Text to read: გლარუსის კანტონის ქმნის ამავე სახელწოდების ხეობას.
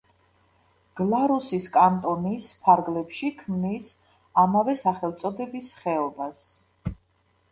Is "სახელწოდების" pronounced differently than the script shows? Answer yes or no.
no